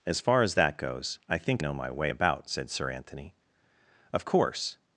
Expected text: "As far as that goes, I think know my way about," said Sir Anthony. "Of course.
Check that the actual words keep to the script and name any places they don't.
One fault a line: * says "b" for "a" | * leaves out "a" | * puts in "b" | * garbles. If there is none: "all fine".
all fine